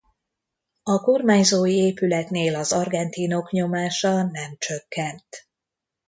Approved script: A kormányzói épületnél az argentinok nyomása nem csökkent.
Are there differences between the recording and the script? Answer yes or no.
no